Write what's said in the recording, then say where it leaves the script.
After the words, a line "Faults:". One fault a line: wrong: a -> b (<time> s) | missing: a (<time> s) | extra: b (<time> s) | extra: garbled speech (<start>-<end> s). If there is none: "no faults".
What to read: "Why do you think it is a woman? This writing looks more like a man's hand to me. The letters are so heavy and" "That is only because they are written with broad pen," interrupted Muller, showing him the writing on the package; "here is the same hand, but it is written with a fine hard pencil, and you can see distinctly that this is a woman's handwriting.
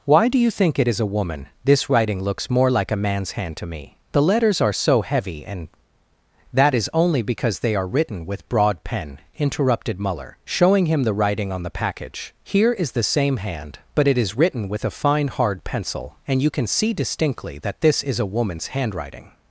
"Why do you think it is a woman? This writing looks more like a man's hand to me. The letters are so heavy and" "That is only because they are written with broad pen," interrupted Muller, showing him the writing on the package; "here is the same hand, but it is written with a fine hard pencil, and you can see distinctly that this is a woman's handwriting.
Faults:
no faults